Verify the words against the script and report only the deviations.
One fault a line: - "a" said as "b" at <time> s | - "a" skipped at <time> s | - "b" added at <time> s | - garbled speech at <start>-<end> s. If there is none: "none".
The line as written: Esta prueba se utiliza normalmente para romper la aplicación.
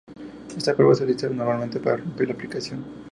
none